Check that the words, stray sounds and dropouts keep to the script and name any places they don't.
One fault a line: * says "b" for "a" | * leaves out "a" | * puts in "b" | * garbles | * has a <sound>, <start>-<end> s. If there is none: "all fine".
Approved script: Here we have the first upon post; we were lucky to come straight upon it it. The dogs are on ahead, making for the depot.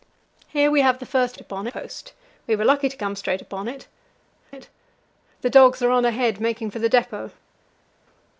all fine